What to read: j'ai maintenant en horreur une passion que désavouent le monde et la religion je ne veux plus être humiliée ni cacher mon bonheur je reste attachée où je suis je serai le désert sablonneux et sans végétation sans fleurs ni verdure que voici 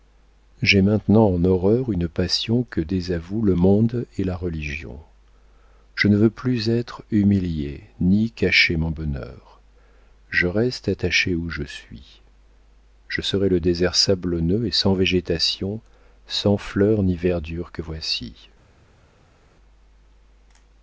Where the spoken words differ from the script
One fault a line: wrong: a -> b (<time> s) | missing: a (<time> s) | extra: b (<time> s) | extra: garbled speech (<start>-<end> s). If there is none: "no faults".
no faults